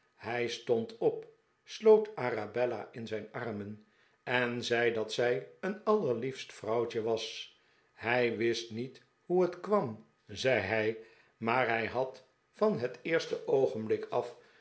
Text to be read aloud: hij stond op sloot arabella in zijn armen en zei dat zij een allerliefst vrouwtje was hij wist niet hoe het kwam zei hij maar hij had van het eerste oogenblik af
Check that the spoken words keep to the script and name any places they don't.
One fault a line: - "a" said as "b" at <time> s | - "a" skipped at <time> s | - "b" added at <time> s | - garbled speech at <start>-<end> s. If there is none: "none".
none